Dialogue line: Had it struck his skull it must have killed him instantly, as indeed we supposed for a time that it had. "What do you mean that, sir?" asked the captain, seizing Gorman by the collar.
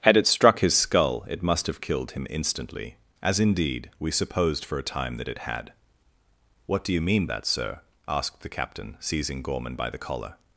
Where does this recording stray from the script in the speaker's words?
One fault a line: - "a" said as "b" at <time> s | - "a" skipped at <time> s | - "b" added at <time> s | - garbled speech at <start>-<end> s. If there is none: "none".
none